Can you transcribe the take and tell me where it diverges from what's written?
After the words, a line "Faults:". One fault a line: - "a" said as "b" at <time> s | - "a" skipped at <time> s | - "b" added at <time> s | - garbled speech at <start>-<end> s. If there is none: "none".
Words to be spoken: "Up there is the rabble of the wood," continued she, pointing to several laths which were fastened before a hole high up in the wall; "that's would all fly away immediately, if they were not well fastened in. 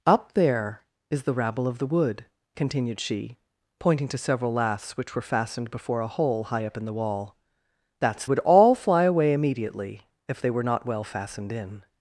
"Up there is the rabble of the wood," continued she, pointing to several laths which were fastened before a hole high up in the wall; "that's would all fly away immediately, if they were not well fastened in.
Faults:
none